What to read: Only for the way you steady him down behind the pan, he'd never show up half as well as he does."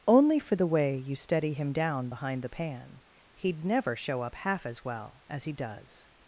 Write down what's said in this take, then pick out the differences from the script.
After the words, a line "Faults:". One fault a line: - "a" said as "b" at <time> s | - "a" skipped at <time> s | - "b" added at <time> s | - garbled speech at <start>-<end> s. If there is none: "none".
Only for the way you steady him down behind the pan, he'd never show up half as well as he does."
Faults:
none